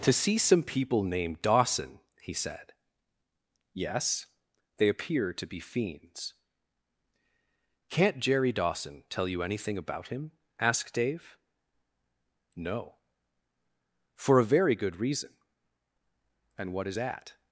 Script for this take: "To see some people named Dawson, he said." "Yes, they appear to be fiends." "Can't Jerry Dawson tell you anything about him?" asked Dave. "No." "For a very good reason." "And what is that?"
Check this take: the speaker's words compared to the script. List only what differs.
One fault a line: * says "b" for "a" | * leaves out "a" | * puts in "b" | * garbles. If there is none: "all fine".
all fine